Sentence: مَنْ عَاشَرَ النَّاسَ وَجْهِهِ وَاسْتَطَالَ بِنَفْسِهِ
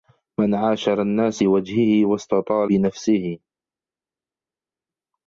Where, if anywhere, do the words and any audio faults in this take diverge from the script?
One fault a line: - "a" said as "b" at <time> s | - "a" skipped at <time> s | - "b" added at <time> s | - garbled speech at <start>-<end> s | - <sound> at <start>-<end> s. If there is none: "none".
none